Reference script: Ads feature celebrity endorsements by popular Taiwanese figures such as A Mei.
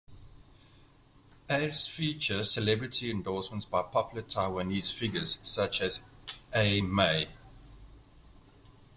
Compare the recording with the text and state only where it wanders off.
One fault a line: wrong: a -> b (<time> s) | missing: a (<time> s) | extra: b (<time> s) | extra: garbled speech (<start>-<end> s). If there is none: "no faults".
no faults